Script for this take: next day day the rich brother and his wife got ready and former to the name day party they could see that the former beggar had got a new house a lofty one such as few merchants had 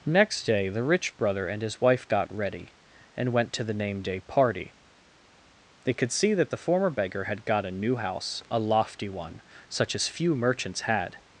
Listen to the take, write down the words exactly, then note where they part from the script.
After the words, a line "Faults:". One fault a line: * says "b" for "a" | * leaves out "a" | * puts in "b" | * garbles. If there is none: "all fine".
next day the rich brother and his wife got ready and went to the name day party they could see that the former beggar had got a new house a lofty one such as few merchants had
Faults:
* leaves out "day"
* says "went" for "former"